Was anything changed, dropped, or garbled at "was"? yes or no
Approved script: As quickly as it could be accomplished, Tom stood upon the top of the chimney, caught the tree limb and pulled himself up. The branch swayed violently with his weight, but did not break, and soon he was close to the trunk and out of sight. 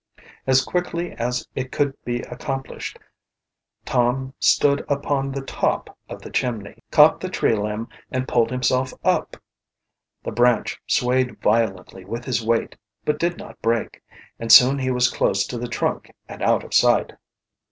no